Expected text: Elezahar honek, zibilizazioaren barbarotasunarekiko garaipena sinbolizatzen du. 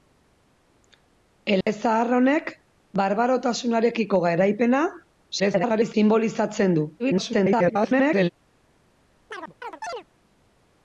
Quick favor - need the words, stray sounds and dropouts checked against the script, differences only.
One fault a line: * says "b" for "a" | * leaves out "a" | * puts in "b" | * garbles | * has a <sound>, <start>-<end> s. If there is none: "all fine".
* has a dropout, 1.6-1.7 s
* leaves out "zibilizazioaren"
* garbles
* garbles
* has a chirp, 9.3-10.0 s